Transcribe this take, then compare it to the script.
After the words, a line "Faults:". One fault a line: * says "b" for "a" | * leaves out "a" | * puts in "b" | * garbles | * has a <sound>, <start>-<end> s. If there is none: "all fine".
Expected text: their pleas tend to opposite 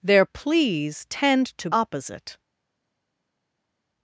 their pleas tend to opposite
Faults:
all fine